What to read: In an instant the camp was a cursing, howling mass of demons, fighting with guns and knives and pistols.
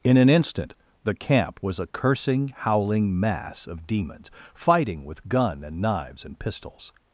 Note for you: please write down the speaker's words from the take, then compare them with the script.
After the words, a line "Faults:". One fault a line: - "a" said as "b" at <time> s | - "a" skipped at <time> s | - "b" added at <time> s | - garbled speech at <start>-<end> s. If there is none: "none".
In an instant the camp was a cursing, howling mass of demons, fighting with gun and knives and pistols.
Faults:
- "guns" said as "gun" at 5.3 s